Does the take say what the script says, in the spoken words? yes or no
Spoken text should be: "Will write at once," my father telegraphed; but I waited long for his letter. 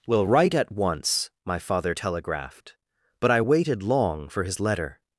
yes